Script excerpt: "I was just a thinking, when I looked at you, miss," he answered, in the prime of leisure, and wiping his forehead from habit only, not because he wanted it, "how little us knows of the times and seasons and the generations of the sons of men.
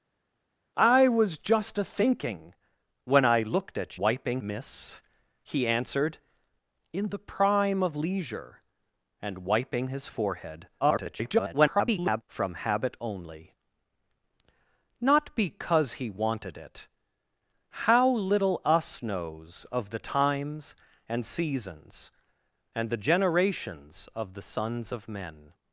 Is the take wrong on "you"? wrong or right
wrong